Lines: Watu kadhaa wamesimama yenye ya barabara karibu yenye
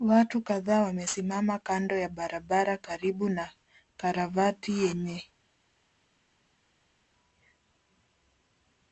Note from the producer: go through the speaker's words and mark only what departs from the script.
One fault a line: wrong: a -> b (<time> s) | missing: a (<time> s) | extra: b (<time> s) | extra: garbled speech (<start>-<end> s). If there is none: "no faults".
wrong: yenye -> kando (1.6 s)
extra: na karavati (3.3 s)